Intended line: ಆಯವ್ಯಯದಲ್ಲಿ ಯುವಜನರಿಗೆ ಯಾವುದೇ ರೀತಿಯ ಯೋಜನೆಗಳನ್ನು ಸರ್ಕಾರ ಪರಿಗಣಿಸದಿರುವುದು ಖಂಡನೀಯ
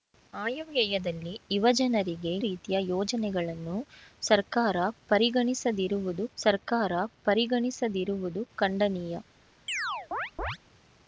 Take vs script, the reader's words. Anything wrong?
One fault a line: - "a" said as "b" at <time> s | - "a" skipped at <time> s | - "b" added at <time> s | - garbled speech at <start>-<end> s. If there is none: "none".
- "ಯಾವುದೇ" skipped at 2.3 s
- "ಸರ್ಕಾರ ಪರಿಗಣಿಸದಿರುವುದು" added at 6.4 s